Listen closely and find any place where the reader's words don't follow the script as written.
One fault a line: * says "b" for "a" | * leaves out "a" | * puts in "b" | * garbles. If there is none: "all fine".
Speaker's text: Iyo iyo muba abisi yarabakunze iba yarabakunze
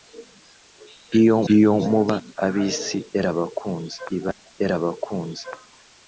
all fine